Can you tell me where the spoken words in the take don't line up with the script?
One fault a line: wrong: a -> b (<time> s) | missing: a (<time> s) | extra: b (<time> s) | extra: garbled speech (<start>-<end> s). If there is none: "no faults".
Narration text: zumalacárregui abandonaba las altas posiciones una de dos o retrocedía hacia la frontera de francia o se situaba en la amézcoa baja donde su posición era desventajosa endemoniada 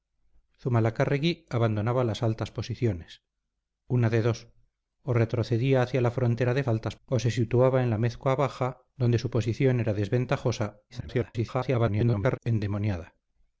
wrong: francia -> altas (6.7 s)
extra: garbled speech (10.9-12.4 s)